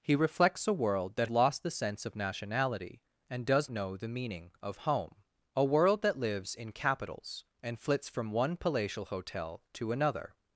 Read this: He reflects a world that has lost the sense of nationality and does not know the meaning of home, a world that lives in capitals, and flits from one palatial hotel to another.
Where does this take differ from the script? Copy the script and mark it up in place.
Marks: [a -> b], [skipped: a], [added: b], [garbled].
He reflects a world that [skipped: has] lost the sense of nationality and does [skipped: not] know the meaning of home, a world that lives in capitals, and flits from one palatial hotel to another.